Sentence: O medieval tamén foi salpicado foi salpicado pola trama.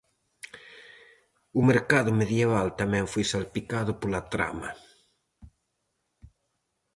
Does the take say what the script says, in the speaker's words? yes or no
no